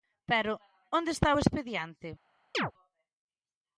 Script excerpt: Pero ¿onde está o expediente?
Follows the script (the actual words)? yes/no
yes